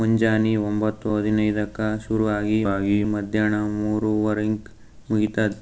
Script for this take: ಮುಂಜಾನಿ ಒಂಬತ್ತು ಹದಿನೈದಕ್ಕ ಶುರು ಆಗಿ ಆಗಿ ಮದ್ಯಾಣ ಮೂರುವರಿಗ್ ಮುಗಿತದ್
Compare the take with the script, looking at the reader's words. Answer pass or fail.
pass